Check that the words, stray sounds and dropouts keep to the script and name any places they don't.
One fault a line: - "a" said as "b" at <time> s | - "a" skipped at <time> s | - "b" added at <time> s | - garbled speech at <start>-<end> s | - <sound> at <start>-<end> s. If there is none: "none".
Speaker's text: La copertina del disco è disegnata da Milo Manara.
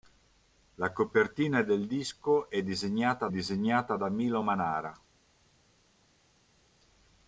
- "disegnata" added at 3.3 s